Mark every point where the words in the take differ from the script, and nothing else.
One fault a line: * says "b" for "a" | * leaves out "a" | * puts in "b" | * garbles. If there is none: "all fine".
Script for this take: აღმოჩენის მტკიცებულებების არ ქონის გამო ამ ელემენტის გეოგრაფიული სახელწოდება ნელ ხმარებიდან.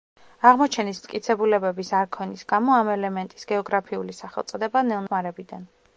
all fine